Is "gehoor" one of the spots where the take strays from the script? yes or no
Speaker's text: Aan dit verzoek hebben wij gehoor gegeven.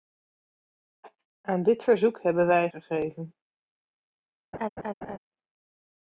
yes